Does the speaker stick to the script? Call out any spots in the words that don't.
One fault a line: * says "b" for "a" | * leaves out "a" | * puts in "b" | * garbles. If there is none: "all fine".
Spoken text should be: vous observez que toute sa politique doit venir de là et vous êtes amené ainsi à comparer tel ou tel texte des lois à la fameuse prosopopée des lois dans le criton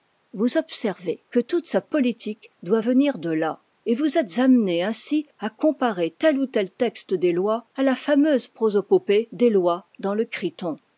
all fine